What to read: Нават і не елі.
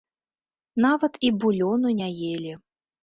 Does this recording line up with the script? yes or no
no